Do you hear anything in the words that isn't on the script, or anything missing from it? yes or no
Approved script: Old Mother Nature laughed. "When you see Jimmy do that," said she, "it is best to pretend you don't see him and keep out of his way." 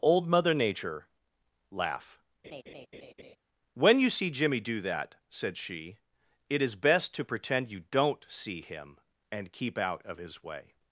yes